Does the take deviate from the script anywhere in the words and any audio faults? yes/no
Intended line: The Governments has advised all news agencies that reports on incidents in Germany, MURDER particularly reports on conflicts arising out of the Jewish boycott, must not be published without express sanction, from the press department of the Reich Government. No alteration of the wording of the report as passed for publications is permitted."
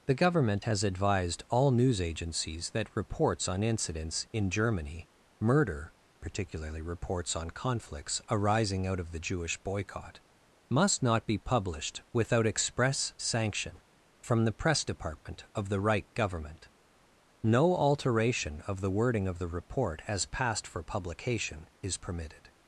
yes